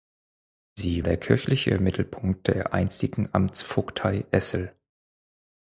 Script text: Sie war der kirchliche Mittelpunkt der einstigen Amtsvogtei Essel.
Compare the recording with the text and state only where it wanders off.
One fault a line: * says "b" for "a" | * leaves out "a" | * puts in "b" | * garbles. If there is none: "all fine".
* leaves out "war"